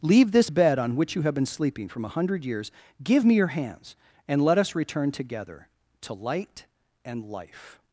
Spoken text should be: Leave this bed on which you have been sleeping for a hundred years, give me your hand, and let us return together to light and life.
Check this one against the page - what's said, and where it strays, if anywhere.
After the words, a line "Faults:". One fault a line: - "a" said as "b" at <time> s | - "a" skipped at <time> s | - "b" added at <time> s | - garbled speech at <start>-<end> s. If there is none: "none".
Leave this bed on which you have been sleeping from a hundred years, give me your hands, and let us return together to light and life.
Faults:
- "for" said as "from" at 1.9 s
- "hand" said as "hands" at 3.5 s